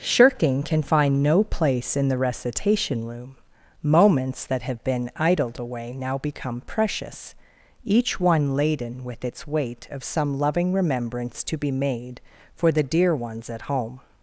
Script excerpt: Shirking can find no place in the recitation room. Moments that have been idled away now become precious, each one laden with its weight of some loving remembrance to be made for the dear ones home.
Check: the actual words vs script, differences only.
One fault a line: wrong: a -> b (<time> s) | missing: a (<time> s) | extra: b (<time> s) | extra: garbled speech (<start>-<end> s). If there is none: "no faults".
extra: at (13.5 s)